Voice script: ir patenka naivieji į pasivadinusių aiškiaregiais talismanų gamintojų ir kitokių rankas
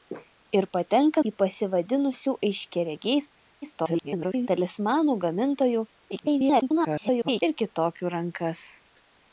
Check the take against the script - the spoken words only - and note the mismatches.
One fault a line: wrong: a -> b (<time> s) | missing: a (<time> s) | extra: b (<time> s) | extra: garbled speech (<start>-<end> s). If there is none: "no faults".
missing: naivieji (1.2 s)
extra: garbled speech (3.6-4.5 s)
extra: garbled speech (6.1-7.4 s)